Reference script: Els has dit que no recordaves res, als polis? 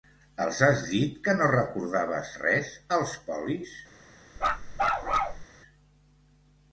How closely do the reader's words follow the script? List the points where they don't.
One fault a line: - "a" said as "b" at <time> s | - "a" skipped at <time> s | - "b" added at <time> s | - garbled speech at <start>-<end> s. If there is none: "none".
none